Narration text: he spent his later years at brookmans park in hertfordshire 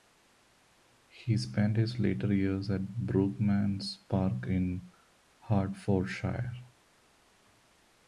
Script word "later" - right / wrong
right